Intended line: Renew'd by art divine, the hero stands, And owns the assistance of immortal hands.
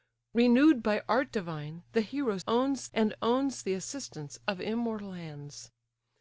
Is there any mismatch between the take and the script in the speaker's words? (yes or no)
yes